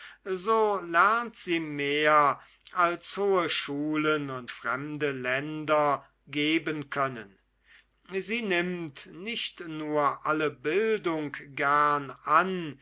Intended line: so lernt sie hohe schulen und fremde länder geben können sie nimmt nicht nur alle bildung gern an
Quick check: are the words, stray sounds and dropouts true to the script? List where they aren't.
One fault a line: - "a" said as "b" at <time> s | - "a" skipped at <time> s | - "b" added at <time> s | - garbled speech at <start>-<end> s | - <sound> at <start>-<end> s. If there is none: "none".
- "mehr als" added at 1.6 s